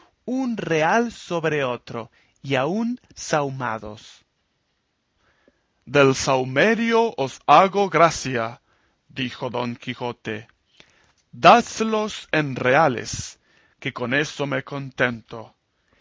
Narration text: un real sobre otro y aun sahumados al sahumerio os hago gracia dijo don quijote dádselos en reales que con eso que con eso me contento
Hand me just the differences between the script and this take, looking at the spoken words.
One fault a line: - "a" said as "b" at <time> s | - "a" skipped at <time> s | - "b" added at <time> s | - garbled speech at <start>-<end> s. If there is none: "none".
- "al" said as "del" at 5.8 s
- "que con eso" skipped at 14.5 s